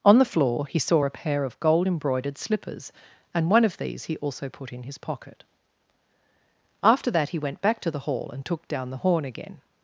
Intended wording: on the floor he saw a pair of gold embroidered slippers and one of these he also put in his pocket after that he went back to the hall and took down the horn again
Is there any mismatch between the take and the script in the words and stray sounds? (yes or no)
no